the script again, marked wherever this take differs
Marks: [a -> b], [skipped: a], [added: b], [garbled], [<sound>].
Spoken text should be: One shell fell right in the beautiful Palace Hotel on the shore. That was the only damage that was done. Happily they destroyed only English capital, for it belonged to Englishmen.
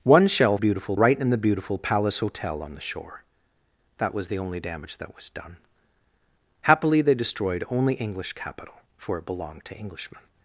One shell [fell -> beautiful] right in the beautiful Palace Hotel on the shore. That was the only damage that was done. Happily they destroyed only English capital, for it belonged to Englishmen.